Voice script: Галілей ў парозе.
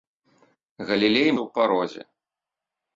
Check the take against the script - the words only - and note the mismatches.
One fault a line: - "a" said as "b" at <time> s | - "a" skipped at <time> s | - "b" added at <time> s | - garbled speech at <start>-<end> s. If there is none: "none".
none